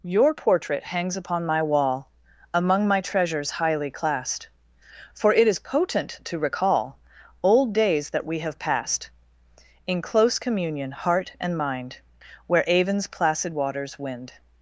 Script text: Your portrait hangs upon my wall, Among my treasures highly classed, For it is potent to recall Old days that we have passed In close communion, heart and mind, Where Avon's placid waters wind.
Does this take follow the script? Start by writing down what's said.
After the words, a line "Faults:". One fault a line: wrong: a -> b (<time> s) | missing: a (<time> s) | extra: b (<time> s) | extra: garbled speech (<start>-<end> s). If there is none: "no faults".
Your portrait hangs upon my wall, Among my treasures highly classed, For it is potent to recall Old days that we have passed In close communion, heart and mind, Where Avon's placid waters wind.
Faults:
no faults